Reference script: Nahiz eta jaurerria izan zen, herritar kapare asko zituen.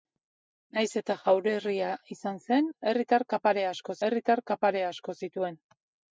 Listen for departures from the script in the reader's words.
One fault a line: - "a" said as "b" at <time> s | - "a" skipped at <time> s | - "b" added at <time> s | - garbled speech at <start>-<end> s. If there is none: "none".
- "herritar kapare asko" added at 4.1 s